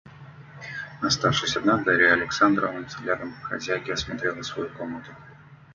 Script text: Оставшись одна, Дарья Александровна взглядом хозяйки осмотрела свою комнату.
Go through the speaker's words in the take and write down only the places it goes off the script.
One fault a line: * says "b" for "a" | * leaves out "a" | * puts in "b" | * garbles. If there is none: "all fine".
all fine